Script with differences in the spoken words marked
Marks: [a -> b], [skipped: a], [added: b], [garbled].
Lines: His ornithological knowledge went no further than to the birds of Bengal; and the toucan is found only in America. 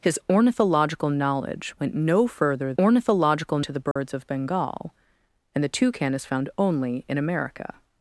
His ornithological knowledge went no further [than -> ornithological] to the birds of Bengal; and the toucan is found only in America.